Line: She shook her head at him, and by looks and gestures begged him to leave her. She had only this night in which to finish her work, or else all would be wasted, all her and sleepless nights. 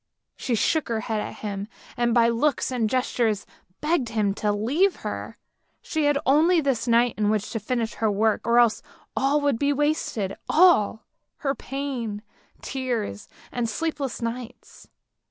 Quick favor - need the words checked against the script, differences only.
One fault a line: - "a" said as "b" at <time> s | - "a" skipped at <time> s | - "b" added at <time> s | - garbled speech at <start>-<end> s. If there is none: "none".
- "pain tears" added at 11.5 s